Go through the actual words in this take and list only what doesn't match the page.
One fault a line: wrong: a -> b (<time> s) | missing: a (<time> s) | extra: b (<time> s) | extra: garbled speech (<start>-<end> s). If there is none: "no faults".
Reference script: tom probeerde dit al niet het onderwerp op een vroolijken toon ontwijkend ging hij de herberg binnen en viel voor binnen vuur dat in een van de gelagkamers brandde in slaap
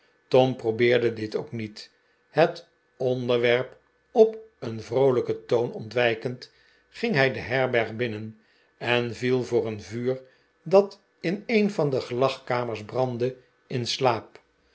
wrong: al -> ook (1.4 s)
wrong: binnen -> een (9.7 s)